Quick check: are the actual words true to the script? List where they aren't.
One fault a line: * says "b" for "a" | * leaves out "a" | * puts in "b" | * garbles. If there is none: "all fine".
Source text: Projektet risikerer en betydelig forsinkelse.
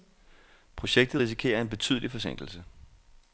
all fine